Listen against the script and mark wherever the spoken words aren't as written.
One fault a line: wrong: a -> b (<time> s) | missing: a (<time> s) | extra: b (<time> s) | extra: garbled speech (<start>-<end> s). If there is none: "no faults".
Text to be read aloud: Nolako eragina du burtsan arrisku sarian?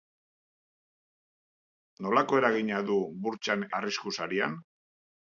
no faults